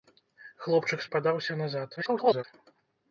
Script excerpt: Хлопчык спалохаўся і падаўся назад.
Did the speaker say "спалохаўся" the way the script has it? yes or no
no